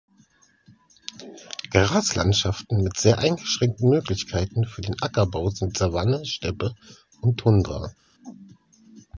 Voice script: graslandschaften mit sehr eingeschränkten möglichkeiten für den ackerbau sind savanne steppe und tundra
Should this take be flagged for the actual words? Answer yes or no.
no